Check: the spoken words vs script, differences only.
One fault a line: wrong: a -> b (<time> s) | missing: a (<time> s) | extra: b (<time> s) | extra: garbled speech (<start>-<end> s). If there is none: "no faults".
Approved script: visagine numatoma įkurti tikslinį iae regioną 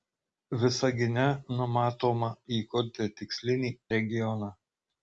missing: iae (3.7 s)